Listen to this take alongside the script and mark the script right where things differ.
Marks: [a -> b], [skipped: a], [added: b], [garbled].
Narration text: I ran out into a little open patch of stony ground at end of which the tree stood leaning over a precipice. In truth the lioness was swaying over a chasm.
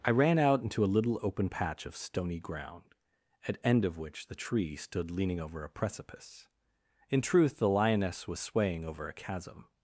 I ran out into a little open patch of stony ground at end of which the tree stood leaning over a precipice. In truth the lioness was swaying over a chasm.